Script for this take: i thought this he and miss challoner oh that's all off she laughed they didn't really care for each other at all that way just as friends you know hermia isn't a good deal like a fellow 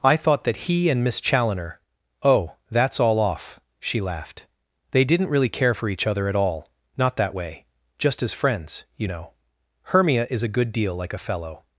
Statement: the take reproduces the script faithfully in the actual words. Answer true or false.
false